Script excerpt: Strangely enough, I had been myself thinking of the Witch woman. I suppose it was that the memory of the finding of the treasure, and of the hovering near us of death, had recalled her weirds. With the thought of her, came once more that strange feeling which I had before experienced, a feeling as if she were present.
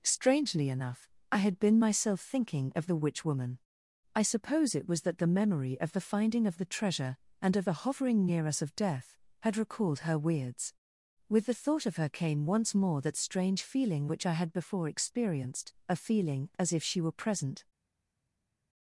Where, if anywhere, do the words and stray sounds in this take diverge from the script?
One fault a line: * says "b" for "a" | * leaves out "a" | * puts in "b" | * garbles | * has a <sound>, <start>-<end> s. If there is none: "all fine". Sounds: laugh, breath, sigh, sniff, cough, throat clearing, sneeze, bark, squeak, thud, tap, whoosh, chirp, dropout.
all fine